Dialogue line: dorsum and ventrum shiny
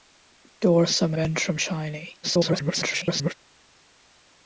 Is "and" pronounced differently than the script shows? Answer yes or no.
yes